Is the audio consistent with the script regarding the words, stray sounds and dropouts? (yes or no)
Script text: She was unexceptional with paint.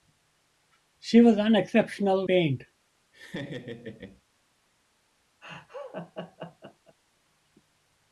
no